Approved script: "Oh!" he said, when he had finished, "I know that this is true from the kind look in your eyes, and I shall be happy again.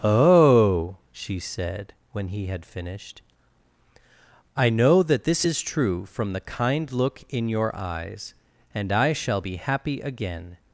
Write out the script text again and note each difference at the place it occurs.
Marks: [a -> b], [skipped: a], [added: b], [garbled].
"Oh!" [he -> she] said, when he had finished, "I know that this is true from the kind look in your eyes, and I shall be happy again.